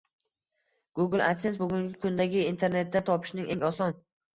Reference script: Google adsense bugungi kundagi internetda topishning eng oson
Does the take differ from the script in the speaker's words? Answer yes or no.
no